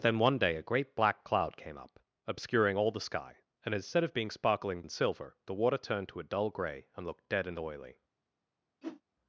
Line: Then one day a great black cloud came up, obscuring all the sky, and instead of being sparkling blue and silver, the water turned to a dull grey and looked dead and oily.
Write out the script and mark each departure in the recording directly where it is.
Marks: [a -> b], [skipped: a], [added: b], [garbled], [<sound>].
Then one day a great black cloud came up, obscuring all the sky, and instead of being sparkling [skipped: blue] and silver, the water turned to a dull grey and looked dead and oily. [whoosh]